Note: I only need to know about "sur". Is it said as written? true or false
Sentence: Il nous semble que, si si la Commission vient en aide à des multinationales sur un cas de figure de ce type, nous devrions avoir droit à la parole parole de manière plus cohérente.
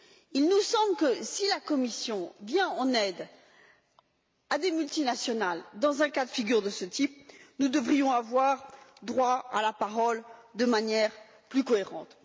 false